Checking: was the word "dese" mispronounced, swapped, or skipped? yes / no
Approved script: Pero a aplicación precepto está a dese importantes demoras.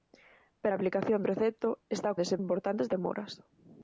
no